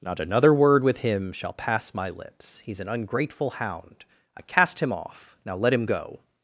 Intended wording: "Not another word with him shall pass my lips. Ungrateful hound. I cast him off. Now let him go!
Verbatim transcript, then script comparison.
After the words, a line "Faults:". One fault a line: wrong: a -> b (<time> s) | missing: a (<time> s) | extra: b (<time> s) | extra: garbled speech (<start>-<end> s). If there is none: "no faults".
"Not another word with him shall pass my lips. He's an ungrateful hound. I cast him off. Now let him go!
Faults:
extra: He's an (2.6 s)